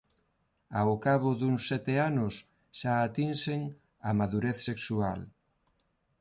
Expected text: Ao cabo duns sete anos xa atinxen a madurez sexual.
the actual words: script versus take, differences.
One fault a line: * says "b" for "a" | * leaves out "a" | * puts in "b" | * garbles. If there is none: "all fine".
all fine